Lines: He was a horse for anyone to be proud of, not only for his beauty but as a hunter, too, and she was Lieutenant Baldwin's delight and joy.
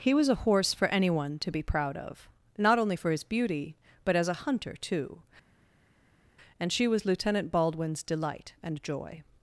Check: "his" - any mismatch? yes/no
no